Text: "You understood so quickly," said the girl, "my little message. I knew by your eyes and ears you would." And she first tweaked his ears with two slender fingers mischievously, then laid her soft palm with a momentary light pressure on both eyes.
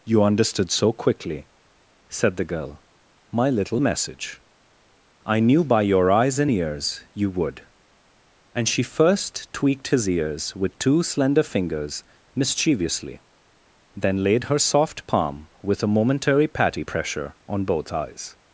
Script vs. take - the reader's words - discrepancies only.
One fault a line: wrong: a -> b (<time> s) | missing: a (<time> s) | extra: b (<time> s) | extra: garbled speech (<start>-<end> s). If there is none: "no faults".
wrong: light -> patty (16.5 s)